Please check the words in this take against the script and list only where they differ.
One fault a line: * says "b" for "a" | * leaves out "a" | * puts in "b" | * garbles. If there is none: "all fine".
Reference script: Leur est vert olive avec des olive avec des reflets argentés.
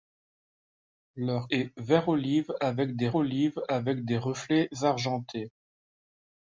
all fine